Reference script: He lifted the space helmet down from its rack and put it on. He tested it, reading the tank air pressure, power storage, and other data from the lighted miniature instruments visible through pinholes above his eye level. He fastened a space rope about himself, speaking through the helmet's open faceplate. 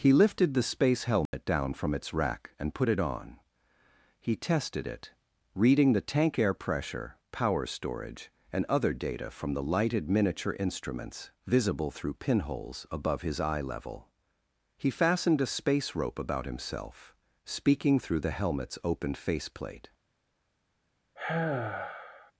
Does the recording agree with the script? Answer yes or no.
yes